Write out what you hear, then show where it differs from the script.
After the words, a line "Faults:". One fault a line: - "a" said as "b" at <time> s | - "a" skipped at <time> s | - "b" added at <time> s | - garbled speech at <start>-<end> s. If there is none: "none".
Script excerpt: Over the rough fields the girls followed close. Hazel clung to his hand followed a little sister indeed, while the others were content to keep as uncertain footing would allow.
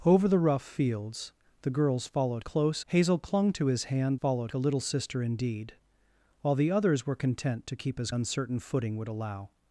Over the rough fields the girls followed close. Hazel clung to his hand followed a little sister indeed, while the others were content to keep as uncertain footing would allow.
Faults:
none